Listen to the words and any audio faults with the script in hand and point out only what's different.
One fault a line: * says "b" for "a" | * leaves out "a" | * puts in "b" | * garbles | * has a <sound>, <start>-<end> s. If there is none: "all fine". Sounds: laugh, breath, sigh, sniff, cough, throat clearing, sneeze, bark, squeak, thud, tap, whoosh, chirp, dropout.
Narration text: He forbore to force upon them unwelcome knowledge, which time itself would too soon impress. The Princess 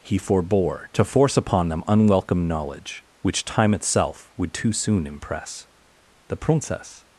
all fine